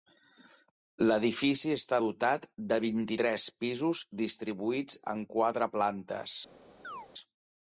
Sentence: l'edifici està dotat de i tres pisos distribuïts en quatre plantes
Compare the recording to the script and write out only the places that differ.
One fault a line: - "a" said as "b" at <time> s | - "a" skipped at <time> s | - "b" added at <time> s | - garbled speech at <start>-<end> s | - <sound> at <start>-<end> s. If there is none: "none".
- "vint" added at 2.8 s
- chirp at 6.8-7.1 s